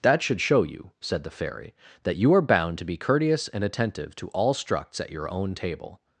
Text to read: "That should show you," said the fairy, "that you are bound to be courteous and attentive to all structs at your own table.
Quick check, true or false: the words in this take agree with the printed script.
true